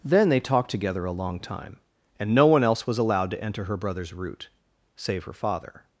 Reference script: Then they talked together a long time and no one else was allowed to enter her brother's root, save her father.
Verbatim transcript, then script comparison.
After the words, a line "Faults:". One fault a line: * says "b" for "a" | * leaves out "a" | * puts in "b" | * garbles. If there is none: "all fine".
Then they talked together a long time and no one else was allowed to enter her brother's root, save her father.
Faults:
all fine